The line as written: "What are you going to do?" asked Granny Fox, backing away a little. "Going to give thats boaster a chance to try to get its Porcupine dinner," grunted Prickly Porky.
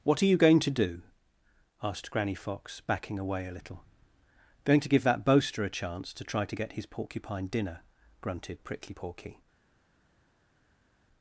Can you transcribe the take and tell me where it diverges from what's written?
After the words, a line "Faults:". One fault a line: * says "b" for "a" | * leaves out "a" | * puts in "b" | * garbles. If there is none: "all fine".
"What are you going to do?" asked Granny Fox, backing away a little. "Going to give that boaster a chance to try to get his Porcupine dinner," grunted Prickly Porky.
Faults:
* says "that" for "thats"
* says "his" for "its"